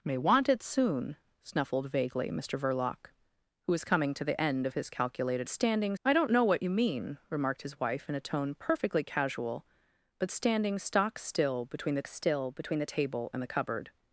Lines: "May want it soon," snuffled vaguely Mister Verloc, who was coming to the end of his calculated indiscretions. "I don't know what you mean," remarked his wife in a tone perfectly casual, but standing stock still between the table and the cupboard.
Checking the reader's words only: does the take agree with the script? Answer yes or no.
no